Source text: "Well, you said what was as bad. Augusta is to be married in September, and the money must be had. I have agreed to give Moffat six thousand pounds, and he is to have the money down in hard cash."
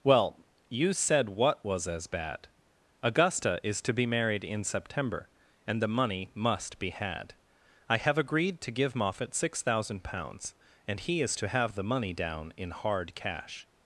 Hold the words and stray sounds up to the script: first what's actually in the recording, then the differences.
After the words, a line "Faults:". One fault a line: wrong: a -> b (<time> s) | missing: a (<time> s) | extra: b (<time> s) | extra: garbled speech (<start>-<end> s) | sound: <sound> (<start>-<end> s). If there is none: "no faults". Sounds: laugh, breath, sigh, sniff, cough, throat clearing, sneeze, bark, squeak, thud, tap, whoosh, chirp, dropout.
"Well, you said what was as bad. Augusta is to be married in September, and the money must be had. I have agreed to give Moffat six thousand pounds, and he is to have the money down in hard cash."
Faults:
no faults